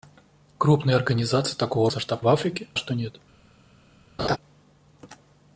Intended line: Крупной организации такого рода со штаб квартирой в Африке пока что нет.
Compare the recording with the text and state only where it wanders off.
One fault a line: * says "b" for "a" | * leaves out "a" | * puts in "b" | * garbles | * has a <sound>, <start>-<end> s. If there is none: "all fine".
* leaves out "рода"
* leaves out "квартирой"
* leaves out "пока"
* has a laugh, 4.2-4.4 s